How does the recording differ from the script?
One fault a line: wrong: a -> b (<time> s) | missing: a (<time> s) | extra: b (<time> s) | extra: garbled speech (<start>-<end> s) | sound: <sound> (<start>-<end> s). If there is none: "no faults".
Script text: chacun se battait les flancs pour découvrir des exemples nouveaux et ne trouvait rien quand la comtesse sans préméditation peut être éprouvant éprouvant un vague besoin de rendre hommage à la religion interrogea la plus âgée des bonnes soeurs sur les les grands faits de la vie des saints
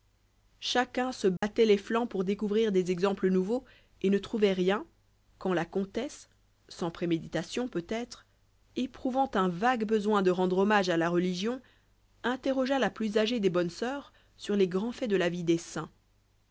sound: dropout (1.4-1.4 s)
missing: éprouvant (9.3 s)
missing: les (14.7 s)